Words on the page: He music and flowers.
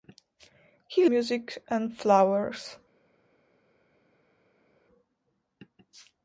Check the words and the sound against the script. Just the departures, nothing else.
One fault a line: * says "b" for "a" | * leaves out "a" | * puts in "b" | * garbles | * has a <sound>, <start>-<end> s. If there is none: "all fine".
all fine